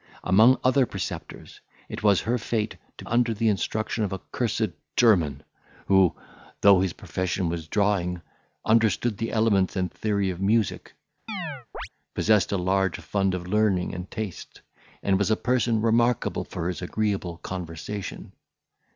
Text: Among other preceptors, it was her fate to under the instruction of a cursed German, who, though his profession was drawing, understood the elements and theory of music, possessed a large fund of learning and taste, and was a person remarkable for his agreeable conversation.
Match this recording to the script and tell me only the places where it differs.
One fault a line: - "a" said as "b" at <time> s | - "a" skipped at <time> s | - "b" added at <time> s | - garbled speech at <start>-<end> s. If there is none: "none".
none